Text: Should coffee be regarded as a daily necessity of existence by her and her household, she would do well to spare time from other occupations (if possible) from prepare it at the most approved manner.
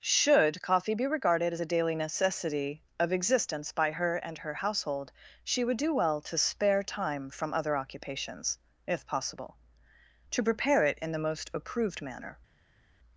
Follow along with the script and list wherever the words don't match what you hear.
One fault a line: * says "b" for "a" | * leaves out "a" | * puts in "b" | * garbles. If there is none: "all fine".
* says "to" for "from"
* says "in" for "at"